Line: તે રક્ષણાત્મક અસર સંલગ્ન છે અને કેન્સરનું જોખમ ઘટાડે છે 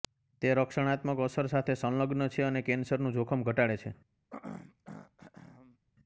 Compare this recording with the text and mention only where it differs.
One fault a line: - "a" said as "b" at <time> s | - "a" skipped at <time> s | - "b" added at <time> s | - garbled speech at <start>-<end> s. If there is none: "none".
- "સાથે" added at 1.5 s